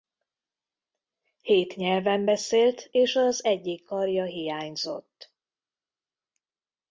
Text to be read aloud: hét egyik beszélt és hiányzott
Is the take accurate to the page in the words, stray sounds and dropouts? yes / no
no